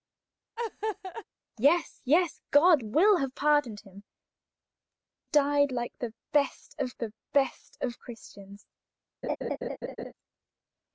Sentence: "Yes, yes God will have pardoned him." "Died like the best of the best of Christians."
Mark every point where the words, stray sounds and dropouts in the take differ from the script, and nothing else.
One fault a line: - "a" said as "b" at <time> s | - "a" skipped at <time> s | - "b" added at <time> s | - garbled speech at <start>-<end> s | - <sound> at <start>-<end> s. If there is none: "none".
- laugh at 0.6-1.2 s
- laugh at 9.2-10.1 s